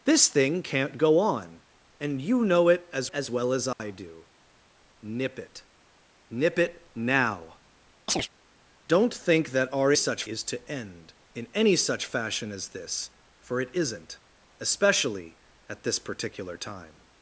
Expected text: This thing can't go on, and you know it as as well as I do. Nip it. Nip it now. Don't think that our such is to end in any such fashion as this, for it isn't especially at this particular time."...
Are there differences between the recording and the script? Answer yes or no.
no